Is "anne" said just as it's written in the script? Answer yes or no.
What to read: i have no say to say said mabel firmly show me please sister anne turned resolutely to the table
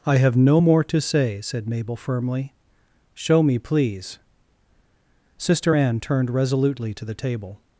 yes